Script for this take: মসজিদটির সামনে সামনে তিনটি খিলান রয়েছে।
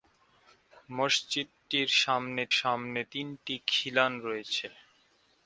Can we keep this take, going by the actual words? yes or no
yes